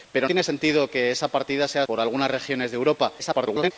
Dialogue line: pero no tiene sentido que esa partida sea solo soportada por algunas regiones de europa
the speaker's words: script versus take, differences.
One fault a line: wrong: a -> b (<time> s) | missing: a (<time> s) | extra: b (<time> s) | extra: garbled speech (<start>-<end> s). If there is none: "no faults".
missing: no (0.3 s)
missing: solo soportada (1.9 s)
extra: garbled speech (3.2-3.7 s)